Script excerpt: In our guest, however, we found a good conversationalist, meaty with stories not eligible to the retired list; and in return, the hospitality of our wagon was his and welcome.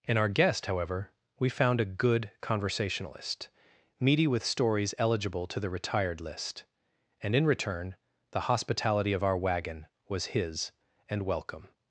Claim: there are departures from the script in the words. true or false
true